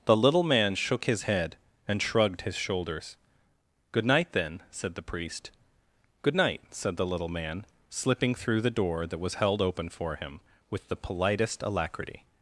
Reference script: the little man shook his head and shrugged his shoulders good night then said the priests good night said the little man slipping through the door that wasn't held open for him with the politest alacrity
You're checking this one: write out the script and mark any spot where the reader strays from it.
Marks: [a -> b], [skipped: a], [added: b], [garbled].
the little man shook his head and shrugged his shoulders good night then said the [priests -> priest] good night said the little man slipping through the door that [wasn't -> was] held open for him with the politest alacrity